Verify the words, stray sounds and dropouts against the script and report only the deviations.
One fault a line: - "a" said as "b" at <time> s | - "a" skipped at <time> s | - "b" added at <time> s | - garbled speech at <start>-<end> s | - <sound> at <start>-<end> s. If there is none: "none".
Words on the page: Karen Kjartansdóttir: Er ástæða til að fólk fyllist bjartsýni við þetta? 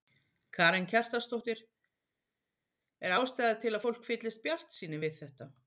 none